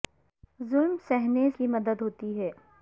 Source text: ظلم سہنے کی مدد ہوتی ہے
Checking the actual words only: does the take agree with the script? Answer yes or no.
yes